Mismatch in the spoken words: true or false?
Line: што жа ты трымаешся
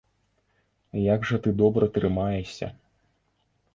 true